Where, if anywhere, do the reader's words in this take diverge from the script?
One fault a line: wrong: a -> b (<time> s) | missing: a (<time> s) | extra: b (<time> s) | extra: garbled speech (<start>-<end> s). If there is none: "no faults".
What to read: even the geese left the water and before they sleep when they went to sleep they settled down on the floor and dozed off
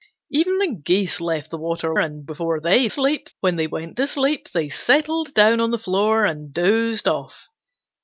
no faults